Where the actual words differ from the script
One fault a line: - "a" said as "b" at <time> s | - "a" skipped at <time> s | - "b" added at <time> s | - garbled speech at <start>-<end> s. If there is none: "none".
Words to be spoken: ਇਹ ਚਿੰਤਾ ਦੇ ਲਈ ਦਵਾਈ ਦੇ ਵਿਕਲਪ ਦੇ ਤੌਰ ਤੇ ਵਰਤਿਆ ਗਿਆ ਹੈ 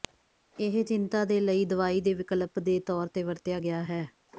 none